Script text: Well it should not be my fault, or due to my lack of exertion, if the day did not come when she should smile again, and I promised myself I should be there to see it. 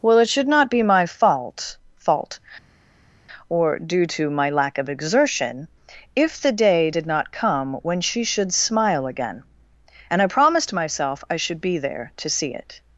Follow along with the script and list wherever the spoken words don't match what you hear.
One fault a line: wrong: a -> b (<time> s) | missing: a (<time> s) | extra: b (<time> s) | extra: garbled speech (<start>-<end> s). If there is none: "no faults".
extra: fault (1.9 s)